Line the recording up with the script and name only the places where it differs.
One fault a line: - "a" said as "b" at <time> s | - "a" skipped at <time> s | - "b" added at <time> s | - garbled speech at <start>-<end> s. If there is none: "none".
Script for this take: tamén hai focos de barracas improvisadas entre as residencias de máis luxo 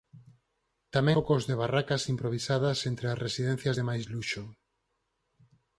- "hai" skipped at 1.1 s